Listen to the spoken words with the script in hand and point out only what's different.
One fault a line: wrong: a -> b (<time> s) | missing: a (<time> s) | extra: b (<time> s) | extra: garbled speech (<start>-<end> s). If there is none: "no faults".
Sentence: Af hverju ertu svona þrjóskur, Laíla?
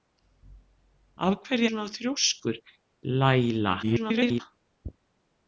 missing: ertu (1.7 s)
extra: garbled speech (3.8-4.4 s)